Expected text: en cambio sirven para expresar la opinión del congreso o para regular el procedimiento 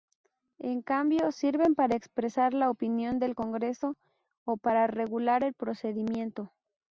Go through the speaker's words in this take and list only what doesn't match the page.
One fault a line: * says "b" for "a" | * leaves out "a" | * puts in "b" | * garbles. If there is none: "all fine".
all fine